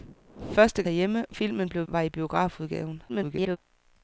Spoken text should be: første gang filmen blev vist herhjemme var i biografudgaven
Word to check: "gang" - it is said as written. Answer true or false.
false